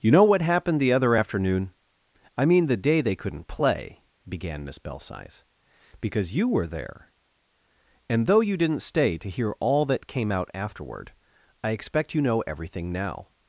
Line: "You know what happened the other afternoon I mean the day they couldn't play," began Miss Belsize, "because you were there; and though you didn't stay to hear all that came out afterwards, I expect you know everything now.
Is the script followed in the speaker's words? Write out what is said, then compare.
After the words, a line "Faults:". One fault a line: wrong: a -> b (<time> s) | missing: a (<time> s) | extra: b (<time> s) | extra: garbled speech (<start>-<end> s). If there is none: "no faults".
"You know what happened the other afternoon I mean the day they couldn't play," began Miss Belsize, "because you were there; and though you didn't stay to hear all that came out afterward, I expect you know everything now.
Faults:
wrong: afterwards -> afterward (10.5 s)